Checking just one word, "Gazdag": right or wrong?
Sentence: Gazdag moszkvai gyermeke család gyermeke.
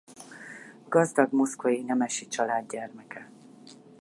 right